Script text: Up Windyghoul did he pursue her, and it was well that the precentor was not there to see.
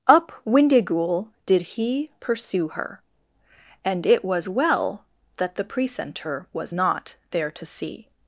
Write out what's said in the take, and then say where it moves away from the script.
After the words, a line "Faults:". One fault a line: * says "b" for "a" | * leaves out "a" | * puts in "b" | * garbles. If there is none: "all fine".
Up Windyghoul did he pursue her, and it was well that the precentor was not there to see.
Faults:
all fine